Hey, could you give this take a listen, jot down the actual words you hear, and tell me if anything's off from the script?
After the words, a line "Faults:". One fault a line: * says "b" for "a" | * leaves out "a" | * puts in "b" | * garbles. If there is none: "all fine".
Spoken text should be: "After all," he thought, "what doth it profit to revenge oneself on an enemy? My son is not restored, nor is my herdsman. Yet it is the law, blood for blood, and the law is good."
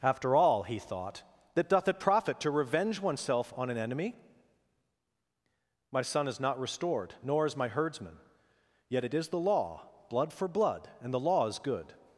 "After all," he thought, "that doth it profit to revenge oneself on an enemy? My son is not restored, nor is my herdsman. Yet it is the law, blood for blood, and the law is good."
Faults:
* says "that" for "what"